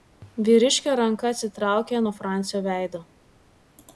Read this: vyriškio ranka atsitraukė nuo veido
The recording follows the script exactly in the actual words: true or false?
false